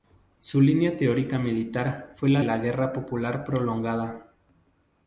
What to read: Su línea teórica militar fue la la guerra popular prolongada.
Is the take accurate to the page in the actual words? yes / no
yes